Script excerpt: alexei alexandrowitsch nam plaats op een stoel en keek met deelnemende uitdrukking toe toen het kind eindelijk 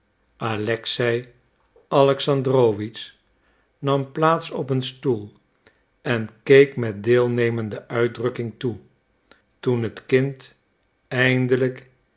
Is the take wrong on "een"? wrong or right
right